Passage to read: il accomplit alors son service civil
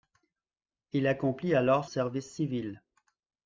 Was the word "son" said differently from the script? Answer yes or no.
yes